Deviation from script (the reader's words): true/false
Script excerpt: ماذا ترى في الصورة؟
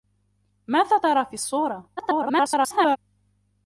true